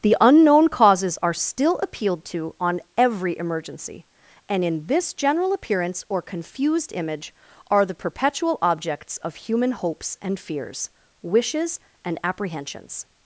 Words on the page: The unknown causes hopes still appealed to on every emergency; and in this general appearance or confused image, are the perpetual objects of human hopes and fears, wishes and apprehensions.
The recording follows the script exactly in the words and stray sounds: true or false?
false